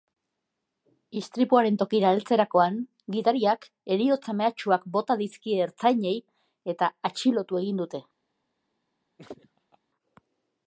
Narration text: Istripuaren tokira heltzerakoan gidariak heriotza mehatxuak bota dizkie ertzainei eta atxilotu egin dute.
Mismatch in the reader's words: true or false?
false